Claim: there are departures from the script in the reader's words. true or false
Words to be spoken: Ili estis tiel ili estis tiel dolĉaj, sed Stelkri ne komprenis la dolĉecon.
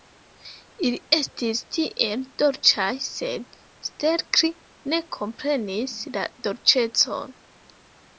true